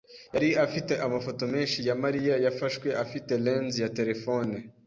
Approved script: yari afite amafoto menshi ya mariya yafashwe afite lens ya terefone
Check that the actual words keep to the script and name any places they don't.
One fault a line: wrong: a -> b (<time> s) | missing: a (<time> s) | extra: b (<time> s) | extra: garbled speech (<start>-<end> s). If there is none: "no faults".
no faults